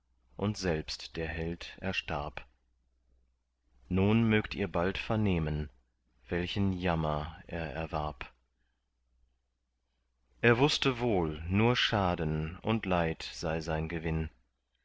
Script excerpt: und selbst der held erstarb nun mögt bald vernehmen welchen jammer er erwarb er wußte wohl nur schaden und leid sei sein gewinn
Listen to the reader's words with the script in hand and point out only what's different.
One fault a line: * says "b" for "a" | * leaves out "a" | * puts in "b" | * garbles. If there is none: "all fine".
* puts in "ihr"